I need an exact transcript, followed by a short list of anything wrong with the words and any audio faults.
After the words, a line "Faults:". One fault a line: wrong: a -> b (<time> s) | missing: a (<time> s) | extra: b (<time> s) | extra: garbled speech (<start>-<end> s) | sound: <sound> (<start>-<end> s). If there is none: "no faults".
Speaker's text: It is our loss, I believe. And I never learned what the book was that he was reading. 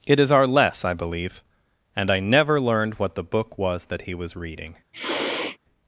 It is our less, I believe. And I never learned what the book was that he was reading.
Faults:
wrong: loss -> less (0.5 s)
sound: sniff (4.9-5.6 s)